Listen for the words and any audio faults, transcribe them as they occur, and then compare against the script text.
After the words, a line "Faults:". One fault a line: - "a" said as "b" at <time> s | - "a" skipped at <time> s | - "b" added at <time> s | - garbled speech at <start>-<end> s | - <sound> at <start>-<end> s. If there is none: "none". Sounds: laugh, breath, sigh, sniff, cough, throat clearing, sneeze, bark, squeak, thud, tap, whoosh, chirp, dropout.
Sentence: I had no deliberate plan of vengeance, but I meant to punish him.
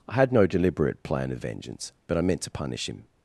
I had no deliberate plan of vengeance, but I meant to punish him.
Faults:
none